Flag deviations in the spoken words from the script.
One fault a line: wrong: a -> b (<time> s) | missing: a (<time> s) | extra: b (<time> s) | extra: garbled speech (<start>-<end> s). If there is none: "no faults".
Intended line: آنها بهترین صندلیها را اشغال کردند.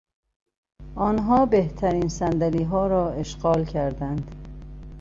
no faults